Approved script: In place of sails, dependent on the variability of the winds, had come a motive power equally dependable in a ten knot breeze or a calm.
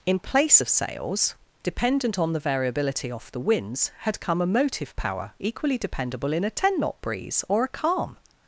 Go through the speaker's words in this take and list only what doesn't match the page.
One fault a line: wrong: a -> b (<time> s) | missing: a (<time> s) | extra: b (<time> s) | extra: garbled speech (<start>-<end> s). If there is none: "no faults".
wrong: of -> off (3.1 s)